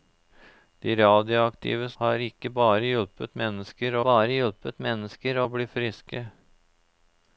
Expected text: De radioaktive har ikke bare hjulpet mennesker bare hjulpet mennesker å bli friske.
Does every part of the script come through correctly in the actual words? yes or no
yes